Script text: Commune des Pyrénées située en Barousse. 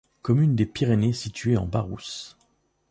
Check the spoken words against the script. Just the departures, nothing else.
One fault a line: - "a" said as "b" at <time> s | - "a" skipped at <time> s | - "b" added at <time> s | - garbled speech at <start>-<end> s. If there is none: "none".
none